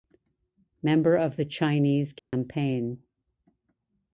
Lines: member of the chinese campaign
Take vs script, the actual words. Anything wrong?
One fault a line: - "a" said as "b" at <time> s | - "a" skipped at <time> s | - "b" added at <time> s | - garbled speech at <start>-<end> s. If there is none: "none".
none